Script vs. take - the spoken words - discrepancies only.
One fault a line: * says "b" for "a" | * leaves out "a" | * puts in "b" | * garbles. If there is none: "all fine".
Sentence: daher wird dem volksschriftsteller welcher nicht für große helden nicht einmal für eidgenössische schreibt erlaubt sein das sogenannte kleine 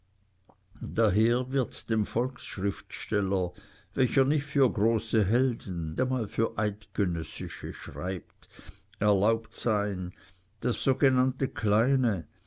* leaves out "nicht"